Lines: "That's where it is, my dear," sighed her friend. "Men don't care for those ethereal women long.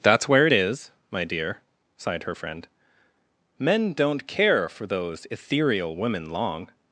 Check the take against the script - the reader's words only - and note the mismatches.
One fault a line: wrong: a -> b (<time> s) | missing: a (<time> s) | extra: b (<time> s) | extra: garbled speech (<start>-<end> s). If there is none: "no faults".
no faults